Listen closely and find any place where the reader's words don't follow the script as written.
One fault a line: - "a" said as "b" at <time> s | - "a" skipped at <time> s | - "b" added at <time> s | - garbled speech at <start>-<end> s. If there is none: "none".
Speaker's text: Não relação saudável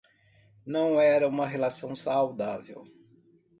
- "era uma" added at 1.0 s